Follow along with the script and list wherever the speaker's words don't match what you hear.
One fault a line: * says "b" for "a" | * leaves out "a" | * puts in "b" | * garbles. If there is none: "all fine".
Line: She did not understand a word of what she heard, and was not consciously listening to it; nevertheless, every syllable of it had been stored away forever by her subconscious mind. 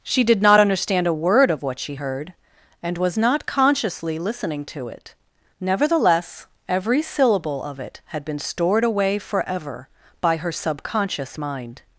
all fine